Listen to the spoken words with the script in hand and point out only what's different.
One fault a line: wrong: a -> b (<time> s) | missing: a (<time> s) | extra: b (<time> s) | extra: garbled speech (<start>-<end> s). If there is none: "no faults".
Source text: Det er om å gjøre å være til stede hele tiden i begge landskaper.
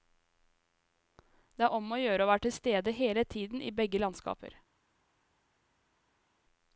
no faults